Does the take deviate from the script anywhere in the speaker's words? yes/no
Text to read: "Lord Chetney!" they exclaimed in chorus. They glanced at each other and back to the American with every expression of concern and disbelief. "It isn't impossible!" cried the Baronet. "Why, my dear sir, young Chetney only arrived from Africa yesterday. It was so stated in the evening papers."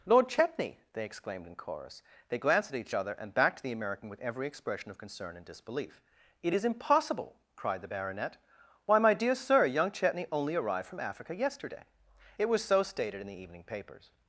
yes